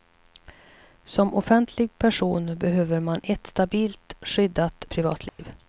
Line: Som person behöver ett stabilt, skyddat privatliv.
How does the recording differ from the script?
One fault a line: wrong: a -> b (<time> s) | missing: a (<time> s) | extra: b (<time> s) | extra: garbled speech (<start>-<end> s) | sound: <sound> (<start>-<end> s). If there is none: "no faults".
extra: offentlig (1.3 s)
extra: man (3.0 s)
sound: dropout (5.3-5.4 s)